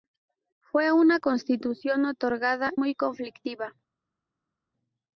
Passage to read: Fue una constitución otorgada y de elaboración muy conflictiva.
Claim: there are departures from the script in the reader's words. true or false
true